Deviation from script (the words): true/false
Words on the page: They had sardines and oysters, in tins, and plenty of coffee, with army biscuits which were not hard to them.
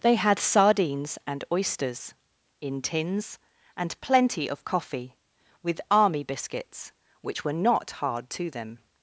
false